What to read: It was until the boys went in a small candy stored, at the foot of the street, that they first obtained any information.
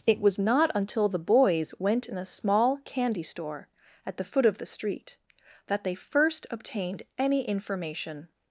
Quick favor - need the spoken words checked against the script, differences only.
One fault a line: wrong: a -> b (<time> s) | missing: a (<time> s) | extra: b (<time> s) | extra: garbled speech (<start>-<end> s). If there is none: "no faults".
extra: not (0.4 s)
wrong: stored -> store (3.2 s)